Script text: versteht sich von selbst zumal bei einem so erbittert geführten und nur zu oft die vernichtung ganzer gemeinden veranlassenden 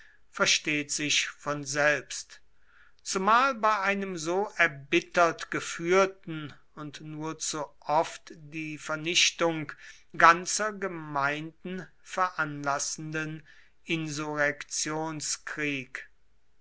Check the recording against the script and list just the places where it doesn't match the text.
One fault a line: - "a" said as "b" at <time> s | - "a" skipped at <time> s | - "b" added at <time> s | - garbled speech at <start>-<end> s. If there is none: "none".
none